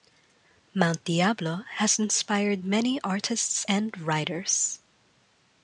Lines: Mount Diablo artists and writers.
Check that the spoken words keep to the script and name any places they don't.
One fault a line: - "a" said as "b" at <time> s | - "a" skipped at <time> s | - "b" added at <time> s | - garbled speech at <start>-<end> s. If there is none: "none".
- "has inspired many" added at 1.7 s